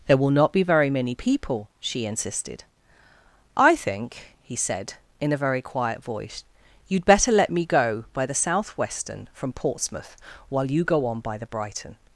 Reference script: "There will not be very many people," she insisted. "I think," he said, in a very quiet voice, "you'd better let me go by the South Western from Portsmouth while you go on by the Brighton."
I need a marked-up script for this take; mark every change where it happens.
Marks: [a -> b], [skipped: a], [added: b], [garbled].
"There will not be very many people," she insisted. "I think," he said, in a very quiet voice, "you'd better let me go by the South Western from Portsmouth while you go on by the Brighton."